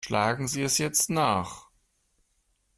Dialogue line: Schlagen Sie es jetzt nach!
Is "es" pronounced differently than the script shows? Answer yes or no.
no